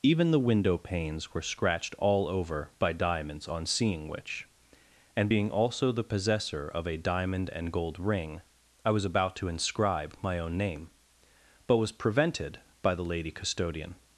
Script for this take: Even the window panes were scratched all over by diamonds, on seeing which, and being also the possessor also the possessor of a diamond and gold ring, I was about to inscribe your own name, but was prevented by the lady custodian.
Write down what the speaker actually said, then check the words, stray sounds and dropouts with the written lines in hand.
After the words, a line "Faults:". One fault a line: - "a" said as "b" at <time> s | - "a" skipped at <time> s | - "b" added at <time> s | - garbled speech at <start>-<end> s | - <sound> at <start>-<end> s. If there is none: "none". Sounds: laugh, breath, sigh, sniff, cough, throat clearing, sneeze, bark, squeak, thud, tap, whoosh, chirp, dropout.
Even the window panes were scratched all over by diamonds, on seeing which, and being also the possessor of a diamond and gold ring, I was about to inscribe my own name, but was prevented by the lady custodian.
Faults:
- "also the possessor" skipped at 6.7 s
- "your" said as "my" at 10.2 s